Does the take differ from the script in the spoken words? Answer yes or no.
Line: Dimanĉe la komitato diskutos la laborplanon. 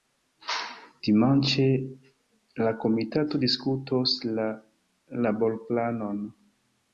no